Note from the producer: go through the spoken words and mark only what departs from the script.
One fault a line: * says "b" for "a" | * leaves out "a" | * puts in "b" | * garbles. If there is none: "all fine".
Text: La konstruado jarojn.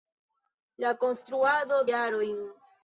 all fine